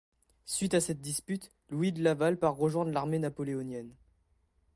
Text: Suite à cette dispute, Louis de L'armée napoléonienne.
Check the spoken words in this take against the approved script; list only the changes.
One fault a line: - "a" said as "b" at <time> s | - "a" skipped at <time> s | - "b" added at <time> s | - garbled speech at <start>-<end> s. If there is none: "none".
- "Laval part rejoindre" added at 2.0 s